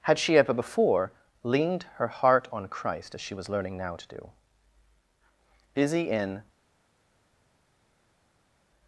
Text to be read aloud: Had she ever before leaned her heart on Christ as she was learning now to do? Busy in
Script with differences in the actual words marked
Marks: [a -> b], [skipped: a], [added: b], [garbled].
Had she ever before leaned her heart on Christ as she was learning now to do? Busy in